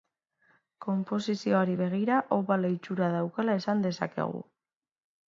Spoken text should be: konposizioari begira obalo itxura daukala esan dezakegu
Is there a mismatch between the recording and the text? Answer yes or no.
no